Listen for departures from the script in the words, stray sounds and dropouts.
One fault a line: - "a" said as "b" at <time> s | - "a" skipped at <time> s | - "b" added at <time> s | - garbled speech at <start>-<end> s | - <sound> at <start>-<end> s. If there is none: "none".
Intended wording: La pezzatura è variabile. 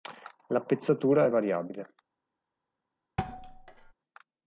- thud at 3.2-3.9 s